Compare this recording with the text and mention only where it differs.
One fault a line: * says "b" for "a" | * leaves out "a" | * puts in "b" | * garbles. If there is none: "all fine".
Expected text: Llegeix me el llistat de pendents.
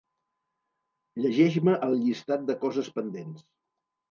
* puts in "coses"